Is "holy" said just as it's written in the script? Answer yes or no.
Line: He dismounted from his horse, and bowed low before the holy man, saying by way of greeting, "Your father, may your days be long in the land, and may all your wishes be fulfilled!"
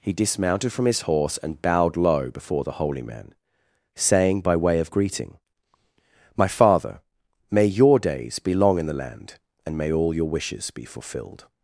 yes